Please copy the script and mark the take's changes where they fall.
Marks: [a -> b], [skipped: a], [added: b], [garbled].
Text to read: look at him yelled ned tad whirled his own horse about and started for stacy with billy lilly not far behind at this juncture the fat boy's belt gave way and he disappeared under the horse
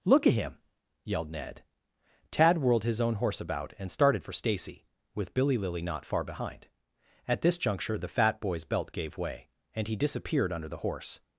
look at him yelled ned tad whirled his own horse about and started for stacy with billy lilly not far behind at this juncture the fat boy's belt gave way and he disappeared under the horse